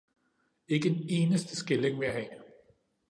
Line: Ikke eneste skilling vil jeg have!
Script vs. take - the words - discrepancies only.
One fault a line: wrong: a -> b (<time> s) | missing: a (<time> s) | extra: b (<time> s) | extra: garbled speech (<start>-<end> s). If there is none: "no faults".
extra: en (0.9 s)